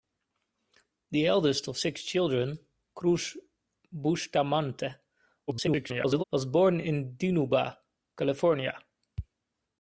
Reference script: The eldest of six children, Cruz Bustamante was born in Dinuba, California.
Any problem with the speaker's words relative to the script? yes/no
yes